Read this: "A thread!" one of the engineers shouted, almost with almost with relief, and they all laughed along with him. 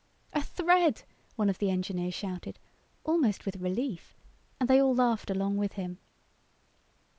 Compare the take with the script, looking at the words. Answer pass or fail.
fail